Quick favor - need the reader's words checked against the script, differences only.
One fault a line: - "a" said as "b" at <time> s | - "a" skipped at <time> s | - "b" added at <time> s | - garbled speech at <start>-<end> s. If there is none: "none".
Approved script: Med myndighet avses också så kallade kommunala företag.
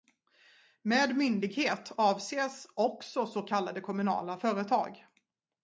none